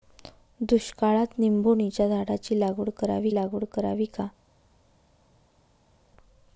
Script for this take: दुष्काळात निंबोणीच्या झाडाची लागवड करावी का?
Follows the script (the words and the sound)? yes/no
no